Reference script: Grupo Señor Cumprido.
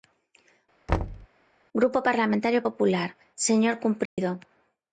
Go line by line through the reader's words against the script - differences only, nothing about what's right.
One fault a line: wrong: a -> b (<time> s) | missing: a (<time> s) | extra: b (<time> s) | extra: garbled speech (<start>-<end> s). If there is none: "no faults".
extra: Parlamentario Popular (2.1 s)